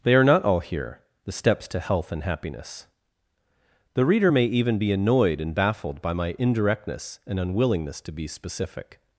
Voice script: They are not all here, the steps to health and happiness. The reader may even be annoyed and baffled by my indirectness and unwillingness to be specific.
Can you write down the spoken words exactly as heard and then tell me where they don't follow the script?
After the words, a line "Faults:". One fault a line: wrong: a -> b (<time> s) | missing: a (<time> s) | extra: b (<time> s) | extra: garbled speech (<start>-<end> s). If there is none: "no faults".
They are not all here, the steps to health and happiness. The reader may even be annoyed and baffled by my indirectness and unwillingness to be specific.
Faults:
no faults